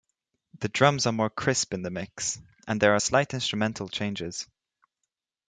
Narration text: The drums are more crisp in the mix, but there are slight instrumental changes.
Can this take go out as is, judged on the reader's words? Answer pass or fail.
fail